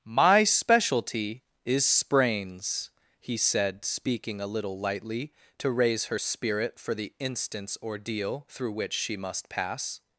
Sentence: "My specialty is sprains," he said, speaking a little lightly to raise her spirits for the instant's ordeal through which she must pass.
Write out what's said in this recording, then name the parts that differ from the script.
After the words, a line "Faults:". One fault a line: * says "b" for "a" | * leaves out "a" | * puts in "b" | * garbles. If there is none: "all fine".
"My specialty is sprains," he said, speaking a little lightly to raise her spirit for the instant's ordeal through which she must pass.
Faults:
* says "spirit" for "spirits"